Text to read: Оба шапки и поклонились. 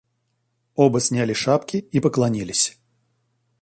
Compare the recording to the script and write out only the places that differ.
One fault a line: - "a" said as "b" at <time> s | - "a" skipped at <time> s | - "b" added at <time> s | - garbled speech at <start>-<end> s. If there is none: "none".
- "сняли" added at 1.0 s